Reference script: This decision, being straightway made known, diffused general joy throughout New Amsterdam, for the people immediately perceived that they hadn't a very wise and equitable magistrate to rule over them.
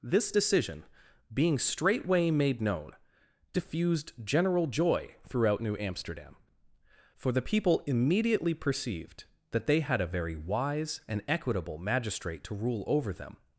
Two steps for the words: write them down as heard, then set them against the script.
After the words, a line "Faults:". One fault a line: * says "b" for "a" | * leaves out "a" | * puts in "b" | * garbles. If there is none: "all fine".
This decision, being straightway made known, diffused general joy throughout New Amsterdam, for the people immediately perceived that they had a very wise and equitable magistrate to rule over them.
Faults:
* says "had" for "hadn't"